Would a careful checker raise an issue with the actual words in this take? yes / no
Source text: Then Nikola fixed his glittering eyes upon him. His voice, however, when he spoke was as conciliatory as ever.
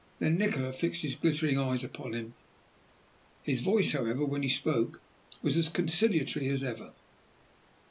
no